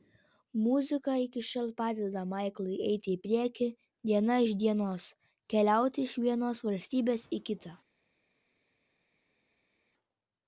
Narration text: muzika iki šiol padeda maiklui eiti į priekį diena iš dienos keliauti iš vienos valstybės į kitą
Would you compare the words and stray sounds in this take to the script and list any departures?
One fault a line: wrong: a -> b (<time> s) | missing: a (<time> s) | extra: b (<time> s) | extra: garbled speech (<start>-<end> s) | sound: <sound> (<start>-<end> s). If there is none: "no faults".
no faults